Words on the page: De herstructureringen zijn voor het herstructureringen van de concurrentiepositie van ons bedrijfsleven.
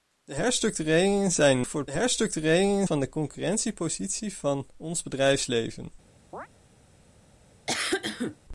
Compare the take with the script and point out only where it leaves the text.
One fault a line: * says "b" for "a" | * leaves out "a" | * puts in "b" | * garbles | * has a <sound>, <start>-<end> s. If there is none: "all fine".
* has a chirp, 6.3-6.5 s
* has a cough, 7.7-8.4 s